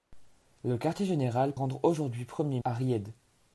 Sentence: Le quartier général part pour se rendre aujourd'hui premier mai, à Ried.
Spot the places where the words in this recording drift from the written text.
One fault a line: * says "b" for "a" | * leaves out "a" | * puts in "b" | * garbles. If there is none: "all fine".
* leaves out "part pour se"
* leaves out "mai"